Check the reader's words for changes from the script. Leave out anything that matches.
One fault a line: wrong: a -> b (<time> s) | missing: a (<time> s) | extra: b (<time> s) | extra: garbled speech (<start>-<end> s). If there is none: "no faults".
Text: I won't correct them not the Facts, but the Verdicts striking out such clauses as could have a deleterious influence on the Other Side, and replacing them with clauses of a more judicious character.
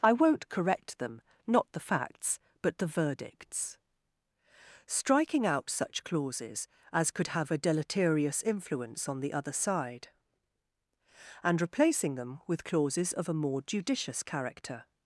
no faults